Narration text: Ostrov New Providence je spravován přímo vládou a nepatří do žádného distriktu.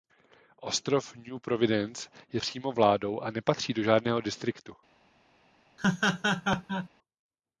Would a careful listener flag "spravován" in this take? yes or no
yes